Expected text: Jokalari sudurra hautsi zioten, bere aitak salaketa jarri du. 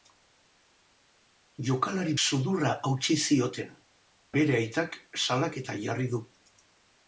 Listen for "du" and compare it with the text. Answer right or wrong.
right